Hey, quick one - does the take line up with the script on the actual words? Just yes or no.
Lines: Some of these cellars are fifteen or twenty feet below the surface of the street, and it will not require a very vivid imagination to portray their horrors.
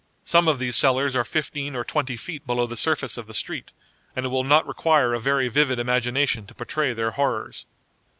yes